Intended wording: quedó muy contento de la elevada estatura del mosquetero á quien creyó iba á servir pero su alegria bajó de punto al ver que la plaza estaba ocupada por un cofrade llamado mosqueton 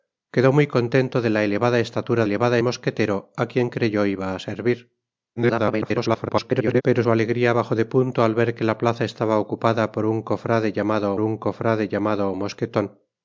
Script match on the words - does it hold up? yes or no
no